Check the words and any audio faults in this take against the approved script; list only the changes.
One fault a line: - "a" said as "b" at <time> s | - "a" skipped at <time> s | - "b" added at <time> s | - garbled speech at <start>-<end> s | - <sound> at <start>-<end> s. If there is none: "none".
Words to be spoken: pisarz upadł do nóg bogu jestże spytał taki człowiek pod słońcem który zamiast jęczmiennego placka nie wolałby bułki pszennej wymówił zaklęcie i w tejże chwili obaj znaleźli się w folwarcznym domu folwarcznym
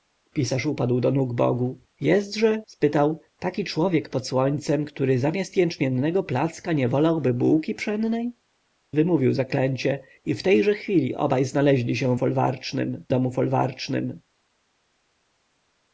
none